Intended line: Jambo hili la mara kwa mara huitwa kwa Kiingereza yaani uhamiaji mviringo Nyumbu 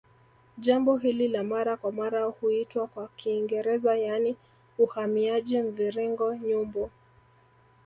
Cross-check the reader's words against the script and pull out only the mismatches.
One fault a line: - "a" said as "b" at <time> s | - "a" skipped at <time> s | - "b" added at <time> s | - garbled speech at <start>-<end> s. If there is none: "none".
none